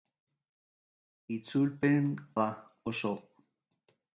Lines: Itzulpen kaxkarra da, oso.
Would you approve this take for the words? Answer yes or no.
no